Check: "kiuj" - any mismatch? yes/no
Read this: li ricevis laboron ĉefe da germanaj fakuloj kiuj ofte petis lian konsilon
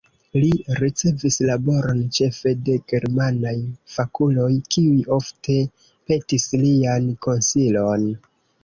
no